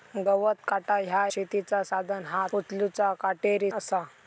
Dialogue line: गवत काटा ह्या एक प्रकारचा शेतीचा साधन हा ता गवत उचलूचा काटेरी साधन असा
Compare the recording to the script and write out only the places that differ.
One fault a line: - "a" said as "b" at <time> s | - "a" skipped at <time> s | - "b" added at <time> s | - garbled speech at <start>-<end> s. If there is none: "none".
- "एक प्रकारचा" skipped at 1.2 s
- "ता गवत" skipped at 2.5 s
- "साधन" skipped at 3.7 s